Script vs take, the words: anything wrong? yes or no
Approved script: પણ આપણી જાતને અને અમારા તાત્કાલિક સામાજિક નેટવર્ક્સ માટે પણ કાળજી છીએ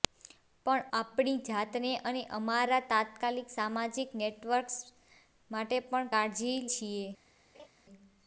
no